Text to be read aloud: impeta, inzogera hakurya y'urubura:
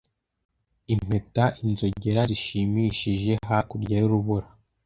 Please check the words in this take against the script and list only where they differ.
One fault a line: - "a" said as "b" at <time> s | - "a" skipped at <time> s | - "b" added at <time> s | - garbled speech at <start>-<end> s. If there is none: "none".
- "zishimishije" added at 2.3 s